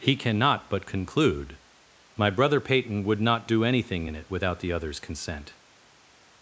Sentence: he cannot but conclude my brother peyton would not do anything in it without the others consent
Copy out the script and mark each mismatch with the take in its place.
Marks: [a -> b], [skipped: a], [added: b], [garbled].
he cannot but conclude my brother peyton would not do anything in it without the others consent